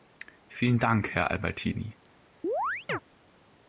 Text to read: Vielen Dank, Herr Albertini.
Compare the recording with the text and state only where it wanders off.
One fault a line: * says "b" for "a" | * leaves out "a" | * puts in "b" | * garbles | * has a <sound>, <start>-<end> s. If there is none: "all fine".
* has a chirp, 2.4-3.0 s